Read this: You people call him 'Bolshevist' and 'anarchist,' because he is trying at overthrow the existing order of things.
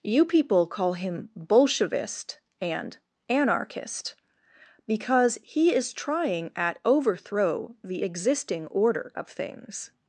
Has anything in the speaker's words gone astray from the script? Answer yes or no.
no